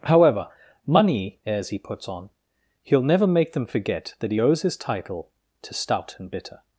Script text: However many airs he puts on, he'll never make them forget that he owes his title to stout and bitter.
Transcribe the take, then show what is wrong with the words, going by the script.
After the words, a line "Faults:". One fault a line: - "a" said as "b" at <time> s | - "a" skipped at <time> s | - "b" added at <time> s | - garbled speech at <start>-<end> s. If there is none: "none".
However money airs he puts on, he'll never make them forget that he owes his title to stout and bitter.
Faults:
- "many" said as "money" at 0.8 s